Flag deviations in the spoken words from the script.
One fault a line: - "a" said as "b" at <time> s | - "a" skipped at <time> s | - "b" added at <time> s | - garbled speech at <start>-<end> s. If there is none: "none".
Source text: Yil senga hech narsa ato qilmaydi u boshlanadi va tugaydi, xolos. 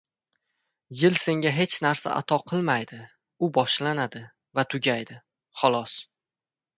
none